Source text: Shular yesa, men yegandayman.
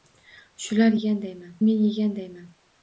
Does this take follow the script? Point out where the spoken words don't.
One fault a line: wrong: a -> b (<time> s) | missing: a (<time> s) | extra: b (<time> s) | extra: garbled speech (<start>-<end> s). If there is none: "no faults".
wrong: yesa -> yegandayman (0.9 s)